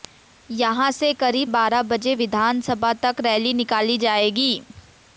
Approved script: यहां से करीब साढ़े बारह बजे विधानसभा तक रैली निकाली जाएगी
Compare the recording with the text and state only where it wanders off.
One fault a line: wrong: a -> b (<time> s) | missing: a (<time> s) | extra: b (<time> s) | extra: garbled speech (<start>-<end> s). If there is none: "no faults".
missing: साढ़े (1.5 s)